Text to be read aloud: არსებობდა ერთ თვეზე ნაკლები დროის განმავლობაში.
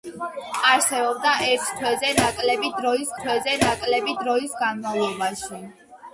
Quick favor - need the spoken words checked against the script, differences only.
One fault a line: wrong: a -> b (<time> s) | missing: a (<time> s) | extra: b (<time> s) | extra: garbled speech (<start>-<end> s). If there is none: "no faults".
extra: თვეზე ნაკლები დროის (3.2 s)